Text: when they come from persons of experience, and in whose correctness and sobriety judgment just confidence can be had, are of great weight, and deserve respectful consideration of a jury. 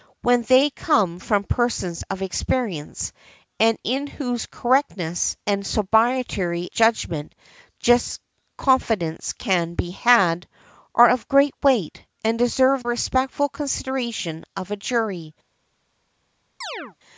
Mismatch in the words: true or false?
false